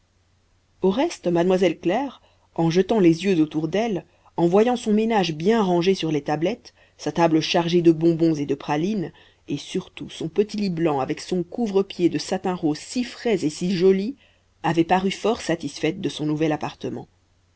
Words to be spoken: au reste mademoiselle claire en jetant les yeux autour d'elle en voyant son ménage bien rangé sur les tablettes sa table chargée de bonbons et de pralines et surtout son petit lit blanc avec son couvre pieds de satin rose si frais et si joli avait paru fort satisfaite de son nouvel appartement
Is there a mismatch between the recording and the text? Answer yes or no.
no